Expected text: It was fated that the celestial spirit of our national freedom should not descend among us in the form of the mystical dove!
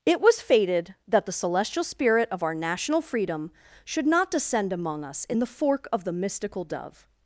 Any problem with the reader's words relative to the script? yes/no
yes